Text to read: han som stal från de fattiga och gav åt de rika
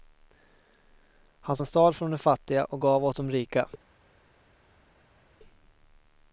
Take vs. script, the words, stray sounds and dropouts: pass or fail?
pass